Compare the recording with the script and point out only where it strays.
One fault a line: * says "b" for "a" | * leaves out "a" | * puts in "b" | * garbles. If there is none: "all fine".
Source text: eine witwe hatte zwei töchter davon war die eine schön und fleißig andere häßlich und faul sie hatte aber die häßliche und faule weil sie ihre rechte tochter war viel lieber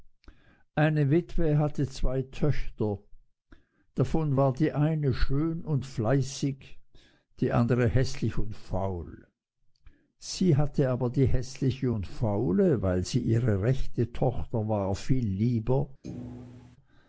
* puts in "die"